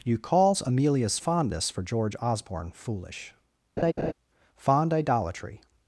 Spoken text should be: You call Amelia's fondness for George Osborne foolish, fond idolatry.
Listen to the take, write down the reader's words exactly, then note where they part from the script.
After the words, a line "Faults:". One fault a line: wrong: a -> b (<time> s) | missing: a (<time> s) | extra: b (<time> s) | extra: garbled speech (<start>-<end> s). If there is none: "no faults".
You calls Amelia's fondness for George Osborne foolish, fond idolatry.
Faults:
wrong: call -> calls (0.2 s)